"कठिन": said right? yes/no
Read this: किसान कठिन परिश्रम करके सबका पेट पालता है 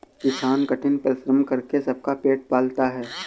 yes